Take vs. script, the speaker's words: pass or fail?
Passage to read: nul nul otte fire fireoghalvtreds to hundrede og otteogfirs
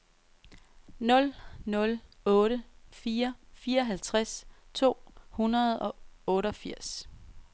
pass